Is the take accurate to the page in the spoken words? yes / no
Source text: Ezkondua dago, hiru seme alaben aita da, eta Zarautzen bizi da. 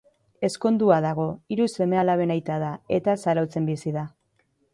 yes